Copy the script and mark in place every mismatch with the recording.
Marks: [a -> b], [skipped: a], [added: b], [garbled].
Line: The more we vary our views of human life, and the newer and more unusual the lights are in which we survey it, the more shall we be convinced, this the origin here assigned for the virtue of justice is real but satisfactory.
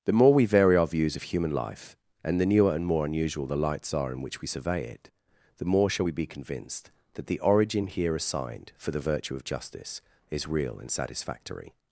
The more we vary our views of human life, and the newer and more unusual the lights are in which we survey it, the more shall we be convinced, [this -> that] the origin here assigned for the virtue of justice is real [but -> and] satisfactory.